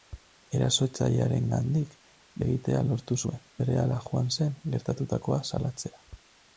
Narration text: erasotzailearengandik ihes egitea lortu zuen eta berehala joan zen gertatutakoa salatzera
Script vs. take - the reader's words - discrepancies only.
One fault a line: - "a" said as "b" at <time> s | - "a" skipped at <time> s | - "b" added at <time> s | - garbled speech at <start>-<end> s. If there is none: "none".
- "ihes" skipped at 1.9 s
- "eta" skipped at 3.4 s